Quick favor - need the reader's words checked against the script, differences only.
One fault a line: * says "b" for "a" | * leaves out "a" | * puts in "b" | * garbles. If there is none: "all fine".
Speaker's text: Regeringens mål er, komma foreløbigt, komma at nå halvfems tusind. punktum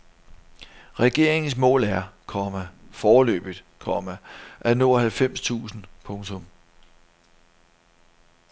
all fine